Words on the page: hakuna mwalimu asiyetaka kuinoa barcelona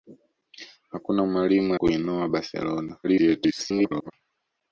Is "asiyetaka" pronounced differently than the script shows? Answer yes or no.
yes